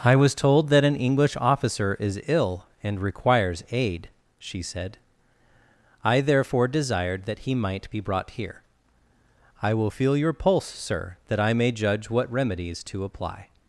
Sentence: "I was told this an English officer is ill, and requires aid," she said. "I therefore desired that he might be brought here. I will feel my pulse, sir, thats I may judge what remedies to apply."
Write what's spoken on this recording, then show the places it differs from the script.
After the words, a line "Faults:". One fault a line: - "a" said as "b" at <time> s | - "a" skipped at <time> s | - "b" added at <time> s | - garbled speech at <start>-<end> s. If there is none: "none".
"I was told that an English officer is ill, and requires aid," she said. "I therefore desired that he might be brought here. I will feel your pulse, sir, that I may judge what remedies to apply."
Faults:
- "this" said as "that" at 0.7 s
- "my" said as "your" at 10.2 s
- "thats" said as "that" at 11.3 s